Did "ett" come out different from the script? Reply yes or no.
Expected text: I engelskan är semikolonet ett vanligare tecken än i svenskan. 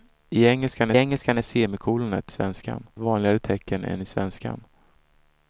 yes